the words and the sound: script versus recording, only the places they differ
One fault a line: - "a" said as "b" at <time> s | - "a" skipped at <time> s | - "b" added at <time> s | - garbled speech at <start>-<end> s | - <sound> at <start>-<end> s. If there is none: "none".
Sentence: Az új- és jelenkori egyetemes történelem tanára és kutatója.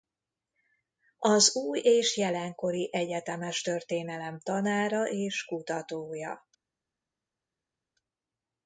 none